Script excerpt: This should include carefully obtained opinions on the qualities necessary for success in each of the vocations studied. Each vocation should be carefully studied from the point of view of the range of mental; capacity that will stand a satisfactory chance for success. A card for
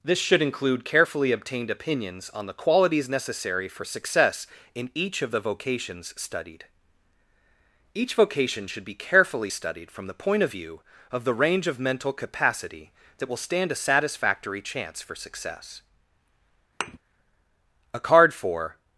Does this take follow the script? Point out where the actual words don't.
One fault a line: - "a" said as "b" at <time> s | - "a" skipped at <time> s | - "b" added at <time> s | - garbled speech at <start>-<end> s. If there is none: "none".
none